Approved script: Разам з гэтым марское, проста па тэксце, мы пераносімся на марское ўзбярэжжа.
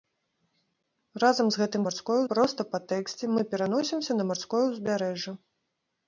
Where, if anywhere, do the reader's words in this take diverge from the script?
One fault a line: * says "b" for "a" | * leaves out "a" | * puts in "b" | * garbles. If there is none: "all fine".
all fine